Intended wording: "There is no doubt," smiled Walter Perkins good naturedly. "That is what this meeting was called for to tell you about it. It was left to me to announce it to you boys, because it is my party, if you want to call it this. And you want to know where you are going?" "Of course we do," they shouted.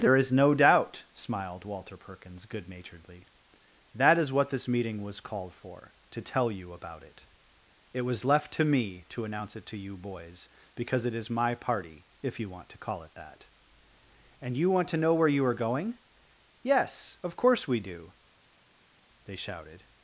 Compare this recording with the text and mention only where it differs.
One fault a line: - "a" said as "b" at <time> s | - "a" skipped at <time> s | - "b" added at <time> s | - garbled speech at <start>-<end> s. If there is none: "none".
- "this" said as "that" at 13.1 s
- "Yes" added at 16.6 s